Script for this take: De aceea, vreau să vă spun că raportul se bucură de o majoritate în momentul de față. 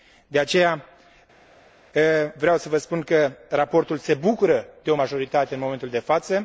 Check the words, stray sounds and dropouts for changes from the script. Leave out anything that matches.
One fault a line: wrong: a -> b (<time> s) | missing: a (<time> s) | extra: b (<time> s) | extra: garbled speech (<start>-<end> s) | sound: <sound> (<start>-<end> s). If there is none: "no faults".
no faults